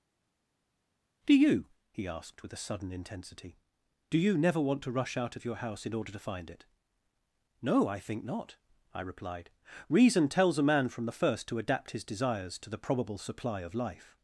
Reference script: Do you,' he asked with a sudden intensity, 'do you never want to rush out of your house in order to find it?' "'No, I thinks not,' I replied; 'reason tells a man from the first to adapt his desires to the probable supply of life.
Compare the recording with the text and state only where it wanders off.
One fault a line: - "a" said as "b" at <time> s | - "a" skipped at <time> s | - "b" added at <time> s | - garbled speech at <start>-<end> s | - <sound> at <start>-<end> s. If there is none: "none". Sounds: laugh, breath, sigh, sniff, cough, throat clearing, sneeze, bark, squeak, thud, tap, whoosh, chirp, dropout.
- "thinks" said as "think" at 8.0 s